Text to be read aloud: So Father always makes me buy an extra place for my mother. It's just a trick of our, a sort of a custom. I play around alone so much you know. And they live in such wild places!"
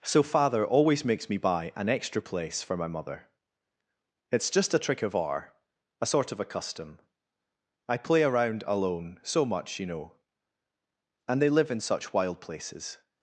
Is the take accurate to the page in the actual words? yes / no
yes